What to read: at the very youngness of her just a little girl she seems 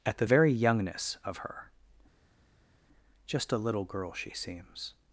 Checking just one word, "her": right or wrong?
right